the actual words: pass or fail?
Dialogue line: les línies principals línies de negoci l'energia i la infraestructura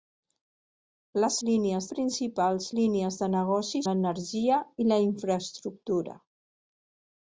pass